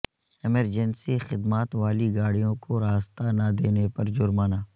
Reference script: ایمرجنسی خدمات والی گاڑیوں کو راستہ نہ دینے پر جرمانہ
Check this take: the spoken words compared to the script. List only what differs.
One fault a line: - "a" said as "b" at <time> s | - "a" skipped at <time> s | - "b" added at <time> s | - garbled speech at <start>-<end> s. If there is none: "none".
none